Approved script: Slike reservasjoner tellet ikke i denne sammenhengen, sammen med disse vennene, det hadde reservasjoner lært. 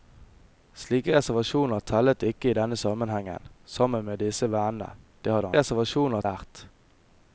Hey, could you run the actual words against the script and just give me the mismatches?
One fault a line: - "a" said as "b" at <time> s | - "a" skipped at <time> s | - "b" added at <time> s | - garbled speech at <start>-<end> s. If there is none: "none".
none